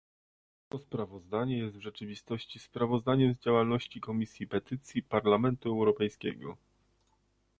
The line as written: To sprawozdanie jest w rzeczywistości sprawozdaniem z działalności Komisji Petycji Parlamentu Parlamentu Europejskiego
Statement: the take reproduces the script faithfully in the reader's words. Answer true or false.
false